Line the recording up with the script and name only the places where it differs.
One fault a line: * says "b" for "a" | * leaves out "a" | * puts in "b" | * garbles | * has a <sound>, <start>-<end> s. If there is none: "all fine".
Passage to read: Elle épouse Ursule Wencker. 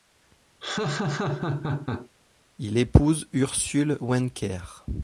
* has a laugh, 0.6-2.1 s
* says "Il" for "Elle"